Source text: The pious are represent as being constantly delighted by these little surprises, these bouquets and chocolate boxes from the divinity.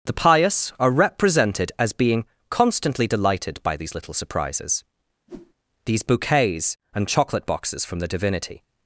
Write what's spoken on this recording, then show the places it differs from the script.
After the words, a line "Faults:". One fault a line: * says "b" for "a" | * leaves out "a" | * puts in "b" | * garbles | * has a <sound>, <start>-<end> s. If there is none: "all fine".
The pious are represented as being constantly delighted by these little surprises, these bouquets and chocolate boxes from the divinity.
Faults:
* says "represented" for "represent"
* has a whoosh, 5.3-5.5 s